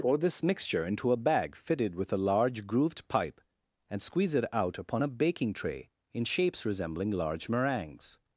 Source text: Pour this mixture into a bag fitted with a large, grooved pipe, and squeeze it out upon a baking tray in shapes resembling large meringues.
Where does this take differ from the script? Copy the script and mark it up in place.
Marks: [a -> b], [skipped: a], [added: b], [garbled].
Pour this mixture into a bag fitted with a large, grooved pipe, and squeeze it out upon a baking tray in shapes resembling large meringues.